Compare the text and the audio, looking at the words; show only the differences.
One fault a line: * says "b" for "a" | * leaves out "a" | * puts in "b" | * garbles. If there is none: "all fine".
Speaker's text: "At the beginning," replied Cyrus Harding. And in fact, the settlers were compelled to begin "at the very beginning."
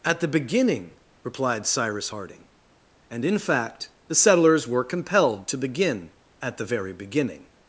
all fine